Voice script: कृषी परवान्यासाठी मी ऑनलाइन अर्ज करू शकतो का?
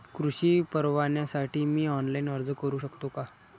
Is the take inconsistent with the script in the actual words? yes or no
no